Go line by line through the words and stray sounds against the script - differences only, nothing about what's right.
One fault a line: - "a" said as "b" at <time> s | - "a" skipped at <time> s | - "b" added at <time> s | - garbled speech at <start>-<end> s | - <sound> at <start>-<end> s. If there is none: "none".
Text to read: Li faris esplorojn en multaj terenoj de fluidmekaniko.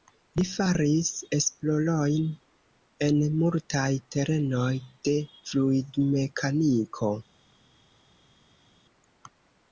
none